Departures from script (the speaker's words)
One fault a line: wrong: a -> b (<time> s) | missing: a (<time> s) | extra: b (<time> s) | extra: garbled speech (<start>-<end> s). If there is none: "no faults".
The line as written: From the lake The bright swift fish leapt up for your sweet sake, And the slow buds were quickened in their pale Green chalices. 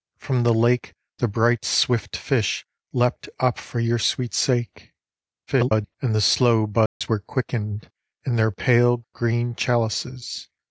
extra: garbled speech (5.5-6.0 s)